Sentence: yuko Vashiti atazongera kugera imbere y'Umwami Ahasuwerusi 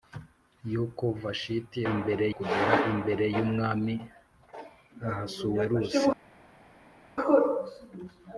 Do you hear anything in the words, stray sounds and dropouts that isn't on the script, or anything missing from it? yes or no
yes